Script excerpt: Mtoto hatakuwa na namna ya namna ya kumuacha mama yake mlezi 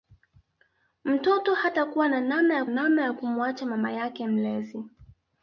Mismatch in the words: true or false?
false